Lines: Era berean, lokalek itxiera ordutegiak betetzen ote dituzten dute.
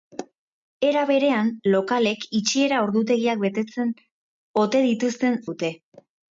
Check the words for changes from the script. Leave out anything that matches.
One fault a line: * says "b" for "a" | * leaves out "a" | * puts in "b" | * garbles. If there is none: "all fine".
all fine